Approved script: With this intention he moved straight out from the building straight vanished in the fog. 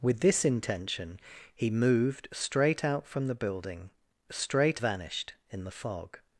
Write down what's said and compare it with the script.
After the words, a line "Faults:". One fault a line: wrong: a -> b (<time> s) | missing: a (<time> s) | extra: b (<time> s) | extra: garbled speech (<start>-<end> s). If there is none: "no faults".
With this intention he moved straight out from the building straight vanished in the fog.
Faults:
no faults